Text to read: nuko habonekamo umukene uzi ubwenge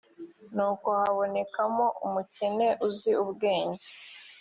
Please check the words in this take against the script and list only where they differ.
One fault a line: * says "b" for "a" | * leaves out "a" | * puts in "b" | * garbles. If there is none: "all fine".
all fine